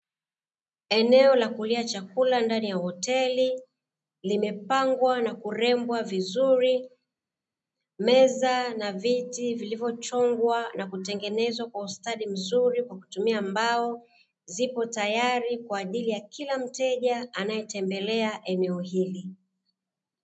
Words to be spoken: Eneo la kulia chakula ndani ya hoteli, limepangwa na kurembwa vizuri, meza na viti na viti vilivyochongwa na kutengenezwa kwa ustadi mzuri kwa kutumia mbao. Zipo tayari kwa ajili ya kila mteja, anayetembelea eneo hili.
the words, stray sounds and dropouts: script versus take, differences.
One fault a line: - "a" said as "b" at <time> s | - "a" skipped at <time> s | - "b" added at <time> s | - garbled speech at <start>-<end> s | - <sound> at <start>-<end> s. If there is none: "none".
- "na viti" skipped at 9.5 s